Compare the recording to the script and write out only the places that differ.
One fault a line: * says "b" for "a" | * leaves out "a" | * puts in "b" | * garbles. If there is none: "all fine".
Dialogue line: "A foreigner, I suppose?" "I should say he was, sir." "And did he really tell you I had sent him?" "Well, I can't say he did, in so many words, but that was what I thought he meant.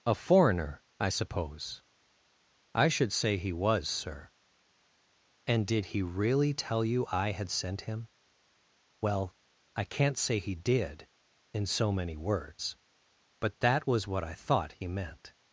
all fine